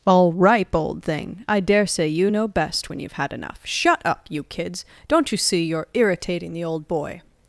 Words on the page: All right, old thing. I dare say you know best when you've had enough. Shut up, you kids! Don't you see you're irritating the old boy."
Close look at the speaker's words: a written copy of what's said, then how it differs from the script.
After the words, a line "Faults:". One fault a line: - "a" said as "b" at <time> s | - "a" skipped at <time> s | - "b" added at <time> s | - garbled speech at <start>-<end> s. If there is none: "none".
All ripe, old thing. I dare say you know best when you've had enough. Shut up, you kids! Don't you see you're irritating the old boy."
Faults:
- "right" said as "ripe" at 0.3 s